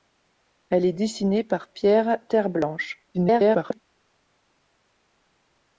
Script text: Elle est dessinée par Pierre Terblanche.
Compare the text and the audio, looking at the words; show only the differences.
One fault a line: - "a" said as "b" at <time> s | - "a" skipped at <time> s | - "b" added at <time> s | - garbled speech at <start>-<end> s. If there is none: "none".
- garbled speech at 3.1-3.8 s